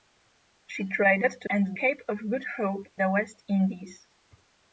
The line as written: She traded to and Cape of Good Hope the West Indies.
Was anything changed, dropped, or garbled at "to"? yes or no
no